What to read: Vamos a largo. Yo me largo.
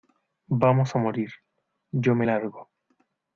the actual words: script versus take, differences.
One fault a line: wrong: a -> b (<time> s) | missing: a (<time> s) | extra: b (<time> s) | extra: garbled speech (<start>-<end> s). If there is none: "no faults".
wrong: largo -> morir (1.0 s)